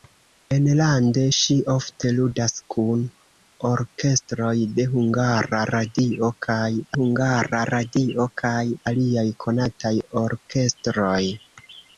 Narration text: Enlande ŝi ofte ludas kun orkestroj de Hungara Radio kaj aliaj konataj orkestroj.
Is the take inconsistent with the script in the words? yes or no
yes